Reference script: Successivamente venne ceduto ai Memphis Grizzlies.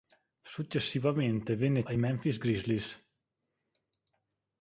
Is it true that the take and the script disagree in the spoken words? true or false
true